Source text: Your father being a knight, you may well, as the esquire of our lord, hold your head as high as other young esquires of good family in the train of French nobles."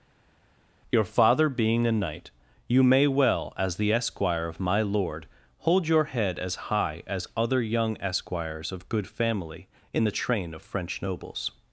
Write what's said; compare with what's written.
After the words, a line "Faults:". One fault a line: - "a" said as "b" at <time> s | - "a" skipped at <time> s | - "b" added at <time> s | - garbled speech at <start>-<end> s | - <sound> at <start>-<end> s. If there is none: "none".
Your father being a knight, you may well, as the esquire of my lord, hold your head as high as other young esquires of good family in the train of French nobles."
Faults:
- "our" said as "my" at 4.6 s